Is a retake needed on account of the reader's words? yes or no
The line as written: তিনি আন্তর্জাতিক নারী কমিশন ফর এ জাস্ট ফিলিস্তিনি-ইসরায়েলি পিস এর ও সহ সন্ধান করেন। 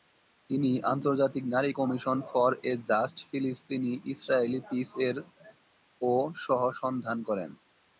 no